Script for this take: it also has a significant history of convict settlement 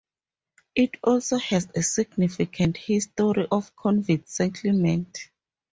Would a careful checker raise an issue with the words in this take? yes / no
no